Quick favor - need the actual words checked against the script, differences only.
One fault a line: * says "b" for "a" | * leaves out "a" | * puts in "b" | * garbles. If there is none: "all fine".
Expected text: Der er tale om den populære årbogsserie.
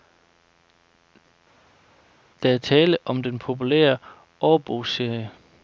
all fine